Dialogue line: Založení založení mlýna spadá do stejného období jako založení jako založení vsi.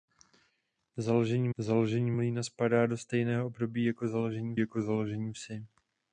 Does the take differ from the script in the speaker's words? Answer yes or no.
no